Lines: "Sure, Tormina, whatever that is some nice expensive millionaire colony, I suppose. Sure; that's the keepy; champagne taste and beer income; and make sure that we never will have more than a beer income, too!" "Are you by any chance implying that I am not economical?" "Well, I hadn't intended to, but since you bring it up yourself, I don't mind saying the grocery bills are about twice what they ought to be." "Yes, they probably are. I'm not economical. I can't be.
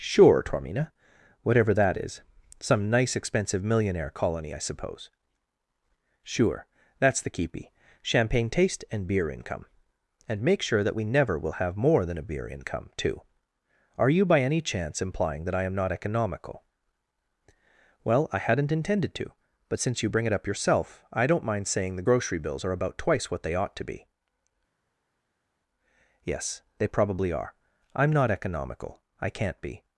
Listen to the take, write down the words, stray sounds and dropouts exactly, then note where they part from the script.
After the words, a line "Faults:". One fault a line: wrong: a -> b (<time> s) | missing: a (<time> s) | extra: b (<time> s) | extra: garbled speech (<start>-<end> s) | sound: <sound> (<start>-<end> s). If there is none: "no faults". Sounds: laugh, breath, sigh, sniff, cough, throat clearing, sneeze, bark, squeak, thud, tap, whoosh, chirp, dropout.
"Sure, Tormina, whatever that is some nice expensive millionaire colony, I suppose. Sure; that's the keepy; champagne taste and beer income; and make sure that we never will have more than a beer income, too!" "Are you by any chance implying that I am not economical?" "Well, I hadn't intended to, but since you bring it up yourself, I don't mind saying the grocery bills are about twice what they ought to be." "Yes, they probably are. I'm not economical. I can't be.
Faults:
no faults